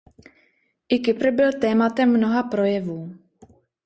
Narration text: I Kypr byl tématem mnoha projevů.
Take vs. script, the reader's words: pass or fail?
pass